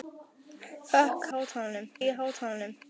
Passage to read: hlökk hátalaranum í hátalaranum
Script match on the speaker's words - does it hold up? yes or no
yes